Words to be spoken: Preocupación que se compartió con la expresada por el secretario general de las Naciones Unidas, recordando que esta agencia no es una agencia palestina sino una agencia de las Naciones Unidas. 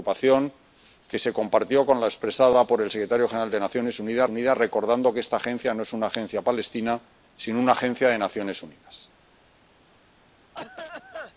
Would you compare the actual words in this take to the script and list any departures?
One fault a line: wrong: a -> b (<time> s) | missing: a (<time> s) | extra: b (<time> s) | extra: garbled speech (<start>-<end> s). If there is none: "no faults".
extra: Unidas (4.3 s)